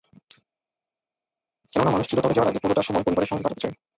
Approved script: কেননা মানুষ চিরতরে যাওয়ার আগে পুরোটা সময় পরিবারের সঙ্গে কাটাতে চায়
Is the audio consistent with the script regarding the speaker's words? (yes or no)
yes